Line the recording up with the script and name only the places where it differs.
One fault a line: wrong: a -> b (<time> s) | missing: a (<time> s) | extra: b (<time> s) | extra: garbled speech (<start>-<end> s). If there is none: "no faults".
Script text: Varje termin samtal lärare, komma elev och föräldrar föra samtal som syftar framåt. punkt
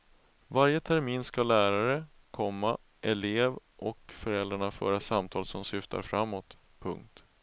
wrong: samtal -> ska (1.2 s)